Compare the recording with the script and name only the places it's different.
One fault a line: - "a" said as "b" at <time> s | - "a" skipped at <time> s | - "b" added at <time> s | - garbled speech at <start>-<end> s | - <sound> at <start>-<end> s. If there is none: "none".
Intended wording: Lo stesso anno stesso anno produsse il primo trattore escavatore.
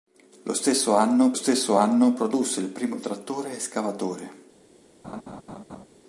- laugh at 5.0-5.9 s